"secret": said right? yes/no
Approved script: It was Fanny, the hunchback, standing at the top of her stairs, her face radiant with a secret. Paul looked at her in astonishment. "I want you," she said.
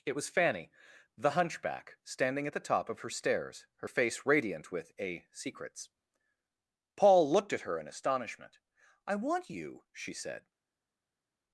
no